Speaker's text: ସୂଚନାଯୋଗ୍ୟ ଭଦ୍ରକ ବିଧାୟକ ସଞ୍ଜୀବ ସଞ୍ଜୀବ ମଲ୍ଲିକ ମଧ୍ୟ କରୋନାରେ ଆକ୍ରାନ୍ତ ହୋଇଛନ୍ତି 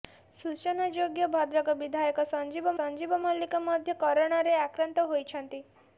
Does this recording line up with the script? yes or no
yes